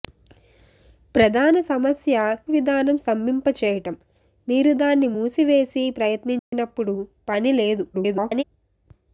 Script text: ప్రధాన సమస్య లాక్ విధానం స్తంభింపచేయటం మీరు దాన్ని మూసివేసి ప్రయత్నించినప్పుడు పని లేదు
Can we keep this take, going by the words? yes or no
no